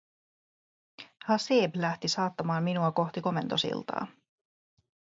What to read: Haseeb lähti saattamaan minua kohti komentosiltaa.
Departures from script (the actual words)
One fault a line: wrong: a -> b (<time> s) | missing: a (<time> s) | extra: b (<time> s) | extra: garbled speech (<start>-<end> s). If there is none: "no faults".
no faults